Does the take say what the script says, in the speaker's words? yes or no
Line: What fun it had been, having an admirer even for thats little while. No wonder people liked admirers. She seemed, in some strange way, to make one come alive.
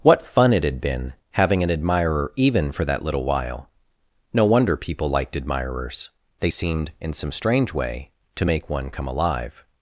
no